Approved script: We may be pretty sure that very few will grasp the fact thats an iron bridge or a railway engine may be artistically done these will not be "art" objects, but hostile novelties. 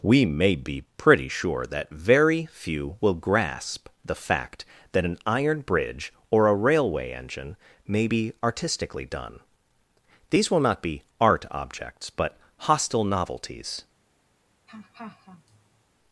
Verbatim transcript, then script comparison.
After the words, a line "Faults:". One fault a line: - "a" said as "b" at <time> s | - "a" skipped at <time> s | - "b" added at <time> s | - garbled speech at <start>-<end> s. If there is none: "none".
We may be pretty sure that very few will grasp the fact that an iron bridge or a railway engine may be artistically done these will not be "art" objects, but hostile novelties.
Faults:
- "thats" said as "that" at 4.9 s